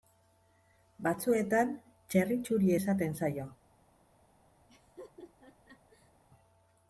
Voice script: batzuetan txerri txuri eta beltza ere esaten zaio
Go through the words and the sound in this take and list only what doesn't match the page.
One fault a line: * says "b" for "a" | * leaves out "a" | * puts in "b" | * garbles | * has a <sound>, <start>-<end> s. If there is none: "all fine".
* leaves out "eta beltza ere"
* has a laugh, 4.7-6.1 s